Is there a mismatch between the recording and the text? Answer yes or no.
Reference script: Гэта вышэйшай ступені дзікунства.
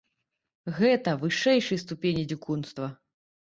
no